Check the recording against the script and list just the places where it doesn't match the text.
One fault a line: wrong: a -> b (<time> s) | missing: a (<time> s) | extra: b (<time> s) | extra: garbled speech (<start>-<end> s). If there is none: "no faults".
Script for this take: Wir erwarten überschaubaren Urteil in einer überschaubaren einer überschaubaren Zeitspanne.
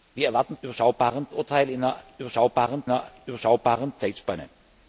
no faults